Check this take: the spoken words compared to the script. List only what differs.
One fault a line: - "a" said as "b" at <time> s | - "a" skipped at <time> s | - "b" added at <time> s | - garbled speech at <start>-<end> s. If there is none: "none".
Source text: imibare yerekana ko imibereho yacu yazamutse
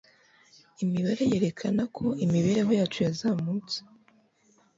none